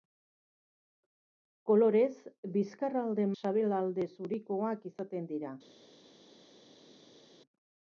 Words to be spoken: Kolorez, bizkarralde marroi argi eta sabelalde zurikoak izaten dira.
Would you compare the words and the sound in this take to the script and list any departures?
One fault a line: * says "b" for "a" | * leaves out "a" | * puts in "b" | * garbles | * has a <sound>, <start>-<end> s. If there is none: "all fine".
* leaves out "marroi argi eta"